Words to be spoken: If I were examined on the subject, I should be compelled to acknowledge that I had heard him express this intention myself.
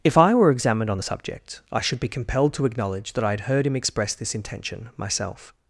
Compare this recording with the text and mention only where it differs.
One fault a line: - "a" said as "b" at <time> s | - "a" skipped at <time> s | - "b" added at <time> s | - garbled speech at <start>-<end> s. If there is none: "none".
none